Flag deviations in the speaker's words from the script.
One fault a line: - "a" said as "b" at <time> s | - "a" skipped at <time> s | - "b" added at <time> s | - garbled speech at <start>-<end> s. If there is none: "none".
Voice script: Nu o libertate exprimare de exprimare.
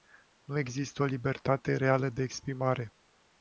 - "există" added at 0.6 s
- "exprimare" said as "reală" at 1.7 s